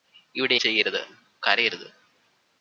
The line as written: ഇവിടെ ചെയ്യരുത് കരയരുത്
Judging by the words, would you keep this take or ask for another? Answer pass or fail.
pass